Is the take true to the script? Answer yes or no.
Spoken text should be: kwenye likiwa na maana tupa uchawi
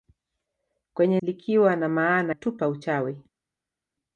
yes